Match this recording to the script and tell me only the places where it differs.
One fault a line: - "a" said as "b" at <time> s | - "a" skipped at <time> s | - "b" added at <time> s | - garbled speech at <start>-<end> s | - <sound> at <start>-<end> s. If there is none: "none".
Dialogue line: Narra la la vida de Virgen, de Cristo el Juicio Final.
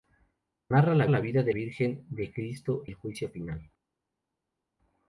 none